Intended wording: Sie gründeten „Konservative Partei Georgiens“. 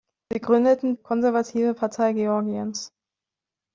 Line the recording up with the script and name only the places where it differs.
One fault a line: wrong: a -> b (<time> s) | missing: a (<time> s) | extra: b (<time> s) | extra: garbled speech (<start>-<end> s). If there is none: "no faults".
no faults